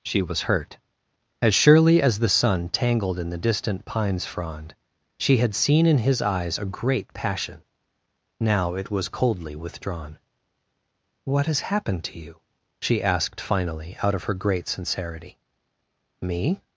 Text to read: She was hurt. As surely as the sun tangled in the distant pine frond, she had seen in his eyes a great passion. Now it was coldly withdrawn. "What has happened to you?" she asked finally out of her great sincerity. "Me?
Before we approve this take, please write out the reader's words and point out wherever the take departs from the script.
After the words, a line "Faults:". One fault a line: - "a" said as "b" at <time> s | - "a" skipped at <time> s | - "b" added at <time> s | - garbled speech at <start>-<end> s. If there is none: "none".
She was hurt. As surely as the sun tangled in the distant pines frond, she had seen in his eyes a great passion. Now it was coldly withdrawn. "What has happened to you?" she asked finally out of her great sincerity. "Me?
Faults:
- "pine" said as "pines" at 3.9 s